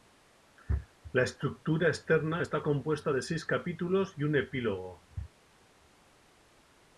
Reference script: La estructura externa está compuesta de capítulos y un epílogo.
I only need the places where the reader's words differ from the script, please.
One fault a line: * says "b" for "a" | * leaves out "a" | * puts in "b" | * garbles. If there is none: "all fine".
* puts in "seis"